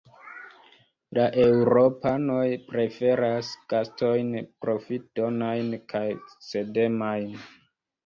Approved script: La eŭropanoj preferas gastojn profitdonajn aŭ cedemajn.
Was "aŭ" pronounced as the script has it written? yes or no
no